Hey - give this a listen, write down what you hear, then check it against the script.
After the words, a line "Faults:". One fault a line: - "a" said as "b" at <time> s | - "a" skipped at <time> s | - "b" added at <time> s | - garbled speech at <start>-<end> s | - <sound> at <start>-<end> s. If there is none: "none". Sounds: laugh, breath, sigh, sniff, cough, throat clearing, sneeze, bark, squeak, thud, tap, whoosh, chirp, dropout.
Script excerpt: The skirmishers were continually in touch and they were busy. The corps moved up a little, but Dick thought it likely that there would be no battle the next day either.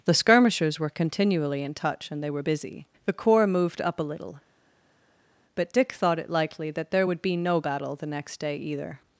The skirmishers were continually in touch and they were busy. The corps moved up a little, but Dick thought it likely that there would be no battle the next day either.
Faults:
none